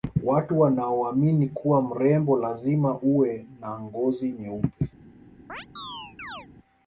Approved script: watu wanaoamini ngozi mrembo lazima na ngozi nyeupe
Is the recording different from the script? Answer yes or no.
yes